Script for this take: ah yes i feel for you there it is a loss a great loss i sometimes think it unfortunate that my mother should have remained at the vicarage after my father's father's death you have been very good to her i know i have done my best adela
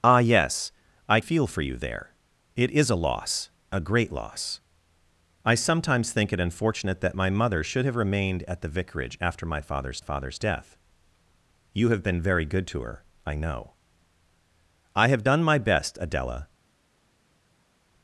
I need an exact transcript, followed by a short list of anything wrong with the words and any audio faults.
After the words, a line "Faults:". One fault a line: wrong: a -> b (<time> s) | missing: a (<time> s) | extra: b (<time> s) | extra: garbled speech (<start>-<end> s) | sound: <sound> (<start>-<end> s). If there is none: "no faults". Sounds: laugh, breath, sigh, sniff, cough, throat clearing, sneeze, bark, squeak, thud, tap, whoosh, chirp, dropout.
ah yes i feel for you there it is a loss a great loss i sometimes think it unfortunate that my mother should have remained at the vicarage after my father's father's death you have been very good to her i know i have done my best adela
Faults:
no faults